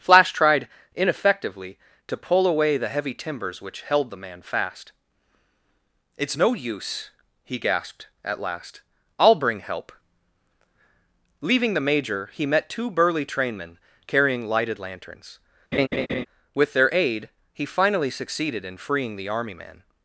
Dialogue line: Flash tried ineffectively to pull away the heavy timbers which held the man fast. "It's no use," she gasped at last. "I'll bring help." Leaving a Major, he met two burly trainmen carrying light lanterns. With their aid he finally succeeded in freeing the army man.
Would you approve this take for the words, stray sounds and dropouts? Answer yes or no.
no